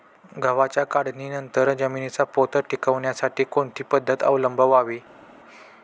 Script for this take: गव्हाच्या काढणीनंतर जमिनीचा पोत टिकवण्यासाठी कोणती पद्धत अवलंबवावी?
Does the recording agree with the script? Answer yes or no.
yes